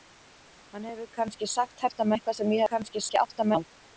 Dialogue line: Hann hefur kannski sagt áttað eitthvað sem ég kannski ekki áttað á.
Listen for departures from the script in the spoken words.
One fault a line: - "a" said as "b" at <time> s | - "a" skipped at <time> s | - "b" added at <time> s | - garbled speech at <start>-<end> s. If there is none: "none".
none